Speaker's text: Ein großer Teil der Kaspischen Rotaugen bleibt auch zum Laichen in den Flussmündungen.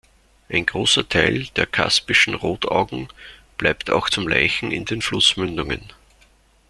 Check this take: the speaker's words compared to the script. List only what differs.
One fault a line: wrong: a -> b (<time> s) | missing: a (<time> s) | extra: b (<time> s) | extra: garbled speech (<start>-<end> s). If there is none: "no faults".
no faults